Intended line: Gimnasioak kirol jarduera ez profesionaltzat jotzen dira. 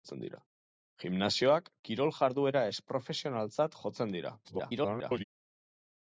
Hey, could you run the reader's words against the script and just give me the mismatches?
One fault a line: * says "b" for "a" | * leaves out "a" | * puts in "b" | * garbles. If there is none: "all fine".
* garbles